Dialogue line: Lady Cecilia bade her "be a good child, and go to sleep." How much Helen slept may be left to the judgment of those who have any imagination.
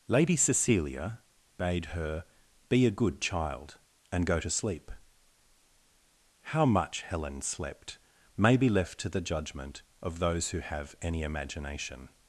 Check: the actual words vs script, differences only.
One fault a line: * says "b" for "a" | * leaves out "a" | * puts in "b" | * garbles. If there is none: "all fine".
all fine